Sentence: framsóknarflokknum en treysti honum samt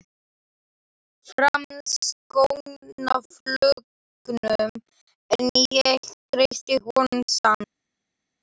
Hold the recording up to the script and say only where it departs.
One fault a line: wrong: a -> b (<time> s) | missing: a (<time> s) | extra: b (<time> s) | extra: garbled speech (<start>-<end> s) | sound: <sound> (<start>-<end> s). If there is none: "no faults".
extra: ég (5.7 s)